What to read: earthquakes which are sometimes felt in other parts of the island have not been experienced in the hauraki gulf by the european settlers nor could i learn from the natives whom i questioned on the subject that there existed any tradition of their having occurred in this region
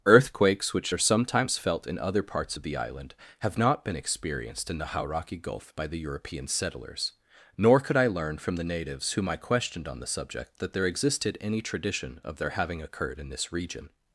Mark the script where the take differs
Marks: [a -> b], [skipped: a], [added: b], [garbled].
earthquakes which are sometimes felt in other parts of the island have not been experienced in the hauraki gulf by the european settlers nor could i learn from the natives whom i questioned on the subject that there existed any tradition of their having occurred in this region